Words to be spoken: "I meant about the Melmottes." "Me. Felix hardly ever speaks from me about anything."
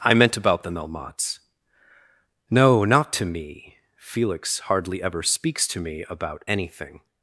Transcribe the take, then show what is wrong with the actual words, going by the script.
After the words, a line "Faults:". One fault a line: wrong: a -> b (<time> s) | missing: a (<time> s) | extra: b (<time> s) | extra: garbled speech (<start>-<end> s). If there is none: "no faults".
"I meant about the Melmottes." "No; not to me. Felix hardly ever speaks to me about anything."
Faults:
extra: No not to (2.5 s)
wrong: from -> to (5.7 s)